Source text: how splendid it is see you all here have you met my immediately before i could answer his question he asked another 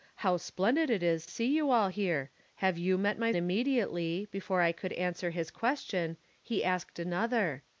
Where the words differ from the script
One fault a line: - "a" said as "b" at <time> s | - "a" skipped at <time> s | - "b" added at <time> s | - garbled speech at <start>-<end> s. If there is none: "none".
none